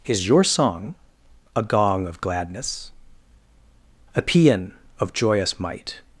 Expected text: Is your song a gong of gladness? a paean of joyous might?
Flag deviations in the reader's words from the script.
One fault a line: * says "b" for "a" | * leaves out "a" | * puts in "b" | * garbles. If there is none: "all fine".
all fine